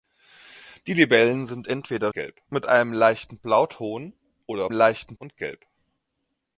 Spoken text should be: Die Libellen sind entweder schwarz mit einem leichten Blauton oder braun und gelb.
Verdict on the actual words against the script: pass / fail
fail